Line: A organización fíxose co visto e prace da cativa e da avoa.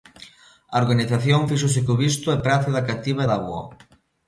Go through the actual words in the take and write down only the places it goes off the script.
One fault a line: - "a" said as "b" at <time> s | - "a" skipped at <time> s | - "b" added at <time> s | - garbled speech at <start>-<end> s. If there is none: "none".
none